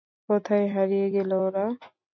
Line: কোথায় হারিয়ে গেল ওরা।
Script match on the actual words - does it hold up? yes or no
yes